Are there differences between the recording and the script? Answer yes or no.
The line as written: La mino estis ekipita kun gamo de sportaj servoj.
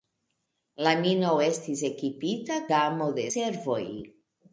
yes